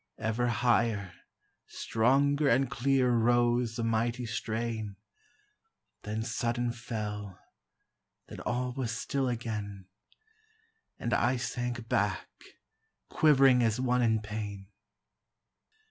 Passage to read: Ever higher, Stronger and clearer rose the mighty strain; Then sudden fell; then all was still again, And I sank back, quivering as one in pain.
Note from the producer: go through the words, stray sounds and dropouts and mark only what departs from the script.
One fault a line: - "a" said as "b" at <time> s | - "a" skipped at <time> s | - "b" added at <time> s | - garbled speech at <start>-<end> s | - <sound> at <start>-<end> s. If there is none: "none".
none